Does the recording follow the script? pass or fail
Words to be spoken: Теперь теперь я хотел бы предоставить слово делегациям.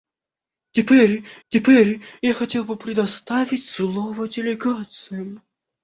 pass